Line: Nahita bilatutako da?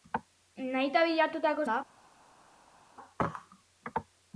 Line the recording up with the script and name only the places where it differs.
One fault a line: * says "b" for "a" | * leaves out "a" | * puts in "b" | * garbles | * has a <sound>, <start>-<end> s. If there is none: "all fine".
all fine